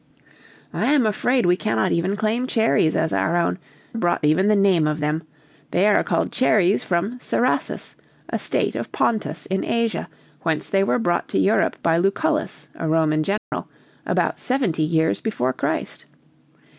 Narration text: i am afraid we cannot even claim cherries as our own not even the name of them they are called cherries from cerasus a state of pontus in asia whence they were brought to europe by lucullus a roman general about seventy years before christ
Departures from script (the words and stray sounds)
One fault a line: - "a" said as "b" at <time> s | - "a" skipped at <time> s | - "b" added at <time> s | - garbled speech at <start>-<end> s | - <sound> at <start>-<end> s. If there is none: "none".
- "not" said as "brought" at 3.9 s
- dropout at 13.4-13.5 s